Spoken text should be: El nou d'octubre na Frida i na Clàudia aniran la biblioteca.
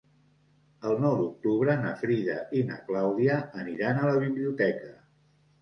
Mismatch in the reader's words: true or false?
true